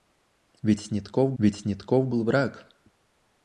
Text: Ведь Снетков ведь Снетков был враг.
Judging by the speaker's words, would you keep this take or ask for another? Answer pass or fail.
pass